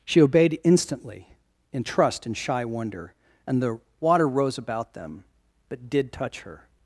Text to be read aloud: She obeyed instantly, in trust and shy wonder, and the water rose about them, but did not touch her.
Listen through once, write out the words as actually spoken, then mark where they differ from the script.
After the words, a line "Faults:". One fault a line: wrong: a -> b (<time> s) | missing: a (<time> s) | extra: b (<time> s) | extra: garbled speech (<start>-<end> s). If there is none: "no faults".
She obeyed instantly, in trust and shy wonder, and the water rose about them, but did touch her.
Faults:
missing: not (6.1 s)